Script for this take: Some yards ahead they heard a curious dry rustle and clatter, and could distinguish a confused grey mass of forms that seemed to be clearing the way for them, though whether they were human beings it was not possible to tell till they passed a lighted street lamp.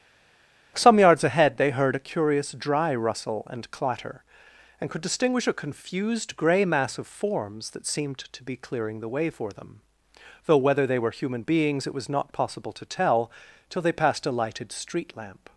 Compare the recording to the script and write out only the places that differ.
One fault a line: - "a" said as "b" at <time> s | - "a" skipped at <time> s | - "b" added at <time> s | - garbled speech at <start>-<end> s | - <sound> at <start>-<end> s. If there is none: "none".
none